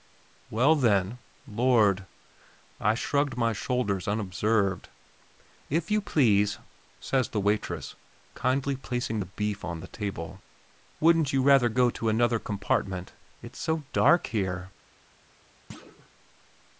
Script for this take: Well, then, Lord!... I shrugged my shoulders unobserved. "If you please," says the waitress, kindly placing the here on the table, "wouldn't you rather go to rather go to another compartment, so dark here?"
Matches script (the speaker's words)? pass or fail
fail